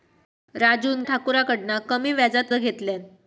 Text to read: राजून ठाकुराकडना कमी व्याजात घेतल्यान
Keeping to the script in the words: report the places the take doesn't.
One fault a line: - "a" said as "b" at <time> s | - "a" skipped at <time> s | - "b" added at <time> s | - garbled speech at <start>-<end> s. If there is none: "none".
none